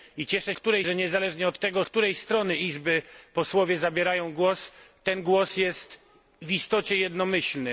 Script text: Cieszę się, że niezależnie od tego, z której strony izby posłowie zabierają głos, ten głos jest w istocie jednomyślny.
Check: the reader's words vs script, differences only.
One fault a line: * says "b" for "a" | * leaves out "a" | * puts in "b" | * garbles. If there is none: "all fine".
* says "której" for "się"
* leaves out "z"